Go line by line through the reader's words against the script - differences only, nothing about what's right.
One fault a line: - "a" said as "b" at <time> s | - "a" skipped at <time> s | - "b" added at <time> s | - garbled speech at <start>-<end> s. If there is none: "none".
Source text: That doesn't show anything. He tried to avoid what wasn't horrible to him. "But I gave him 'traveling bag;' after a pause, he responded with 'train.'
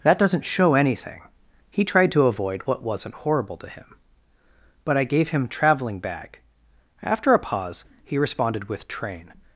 none